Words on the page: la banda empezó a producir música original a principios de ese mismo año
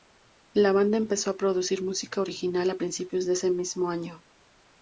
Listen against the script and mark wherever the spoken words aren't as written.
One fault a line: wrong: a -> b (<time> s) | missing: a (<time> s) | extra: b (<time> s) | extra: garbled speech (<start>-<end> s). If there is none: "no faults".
no faults